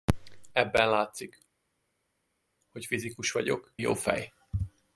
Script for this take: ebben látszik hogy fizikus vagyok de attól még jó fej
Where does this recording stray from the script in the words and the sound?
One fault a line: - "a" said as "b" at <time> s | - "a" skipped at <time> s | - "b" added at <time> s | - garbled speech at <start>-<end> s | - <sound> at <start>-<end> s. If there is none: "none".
- "de attól még" skipped at 3.7 s